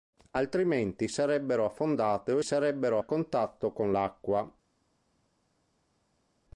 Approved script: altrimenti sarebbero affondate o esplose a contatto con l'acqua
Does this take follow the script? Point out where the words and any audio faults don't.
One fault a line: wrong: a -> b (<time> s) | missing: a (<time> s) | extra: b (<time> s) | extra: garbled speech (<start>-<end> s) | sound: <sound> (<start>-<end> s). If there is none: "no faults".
wrong: esplose -> sarebbero (2.4 s)